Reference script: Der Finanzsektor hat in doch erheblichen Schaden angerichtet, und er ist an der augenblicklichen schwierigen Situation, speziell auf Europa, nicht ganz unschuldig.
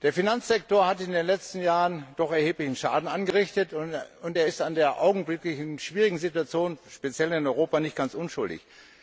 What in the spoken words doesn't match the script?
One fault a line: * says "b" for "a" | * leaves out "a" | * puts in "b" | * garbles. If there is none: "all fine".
* puts in "den letzten Jahren"
* says "in" for "auf"